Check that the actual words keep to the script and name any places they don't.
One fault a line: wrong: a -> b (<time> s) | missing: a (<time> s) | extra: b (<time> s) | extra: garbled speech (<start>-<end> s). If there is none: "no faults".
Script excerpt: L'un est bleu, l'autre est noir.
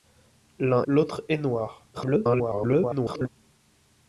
missing: est bleu (0.8 s)
extra: garbled speech (1.9-3.3 s)